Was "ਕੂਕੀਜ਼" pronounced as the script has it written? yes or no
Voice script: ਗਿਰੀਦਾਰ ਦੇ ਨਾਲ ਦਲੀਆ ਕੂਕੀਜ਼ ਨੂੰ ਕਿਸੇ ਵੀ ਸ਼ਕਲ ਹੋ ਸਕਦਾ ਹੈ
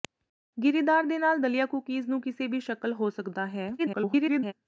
yes